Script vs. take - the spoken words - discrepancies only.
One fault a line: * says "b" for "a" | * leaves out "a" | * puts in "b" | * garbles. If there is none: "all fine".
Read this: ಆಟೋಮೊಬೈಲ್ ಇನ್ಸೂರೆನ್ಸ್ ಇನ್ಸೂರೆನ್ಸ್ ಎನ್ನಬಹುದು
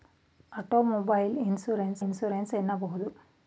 all fine